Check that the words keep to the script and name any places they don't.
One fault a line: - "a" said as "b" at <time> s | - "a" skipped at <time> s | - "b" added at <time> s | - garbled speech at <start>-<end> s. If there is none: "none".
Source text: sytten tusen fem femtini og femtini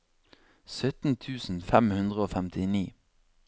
- "femtini" said as "hundre" at 2.0 s